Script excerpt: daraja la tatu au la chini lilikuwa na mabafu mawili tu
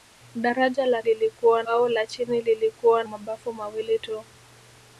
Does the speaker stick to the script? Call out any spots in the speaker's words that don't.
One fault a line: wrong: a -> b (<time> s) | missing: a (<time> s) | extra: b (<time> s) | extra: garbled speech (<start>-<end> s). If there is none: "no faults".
wrong: tatu -> lilikuwa (1.0 s)
missing: na (3.0 s)